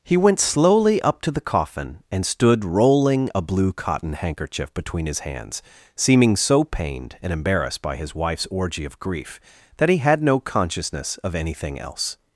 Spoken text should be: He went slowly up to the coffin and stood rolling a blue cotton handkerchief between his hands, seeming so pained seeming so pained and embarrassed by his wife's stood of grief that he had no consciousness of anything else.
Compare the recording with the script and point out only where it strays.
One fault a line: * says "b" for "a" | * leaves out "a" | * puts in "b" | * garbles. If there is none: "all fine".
* leaves out "seeming so pained"
* says "orgy" for "stood"